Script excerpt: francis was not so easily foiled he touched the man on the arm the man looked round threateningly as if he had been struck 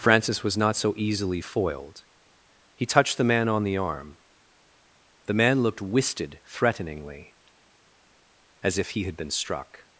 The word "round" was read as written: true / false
false